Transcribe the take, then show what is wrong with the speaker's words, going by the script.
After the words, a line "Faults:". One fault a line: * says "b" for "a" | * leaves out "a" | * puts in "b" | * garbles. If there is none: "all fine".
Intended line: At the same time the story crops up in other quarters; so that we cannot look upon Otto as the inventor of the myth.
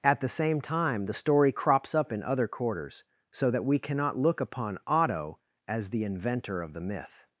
At the same time the story crops up in other quarters; so that we cannot look upon Otto as the inventor of the myth.
Faults:
all fine